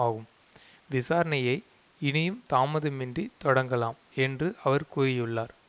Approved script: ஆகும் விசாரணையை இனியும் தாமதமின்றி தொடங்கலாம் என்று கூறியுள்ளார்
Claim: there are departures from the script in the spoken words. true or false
true